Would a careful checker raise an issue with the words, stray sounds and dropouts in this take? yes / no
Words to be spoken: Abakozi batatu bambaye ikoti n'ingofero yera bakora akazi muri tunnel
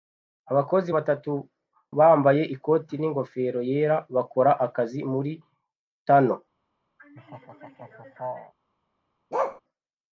yes